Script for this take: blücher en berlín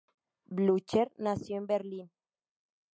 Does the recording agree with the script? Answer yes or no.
no